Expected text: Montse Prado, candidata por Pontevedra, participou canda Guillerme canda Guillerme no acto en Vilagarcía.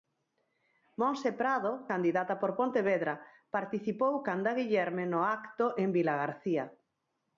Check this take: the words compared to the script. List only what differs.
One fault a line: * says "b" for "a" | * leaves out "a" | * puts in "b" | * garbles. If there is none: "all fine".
* leaves out "canda Guillerme"